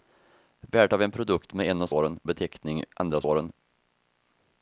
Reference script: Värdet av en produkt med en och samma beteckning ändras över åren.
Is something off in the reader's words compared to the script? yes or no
yes